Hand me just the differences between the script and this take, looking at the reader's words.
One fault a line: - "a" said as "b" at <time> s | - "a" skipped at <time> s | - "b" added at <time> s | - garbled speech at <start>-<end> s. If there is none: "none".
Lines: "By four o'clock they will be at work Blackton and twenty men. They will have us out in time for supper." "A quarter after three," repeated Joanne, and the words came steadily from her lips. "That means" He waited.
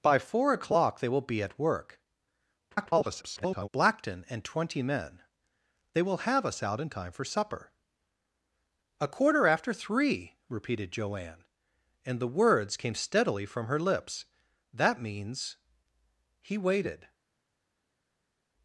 - garbled speech at 2.7-3.7 s